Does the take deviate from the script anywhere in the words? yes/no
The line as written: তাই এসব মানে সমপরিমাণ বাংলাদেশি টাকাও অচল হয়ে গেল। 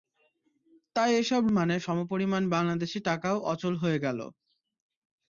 no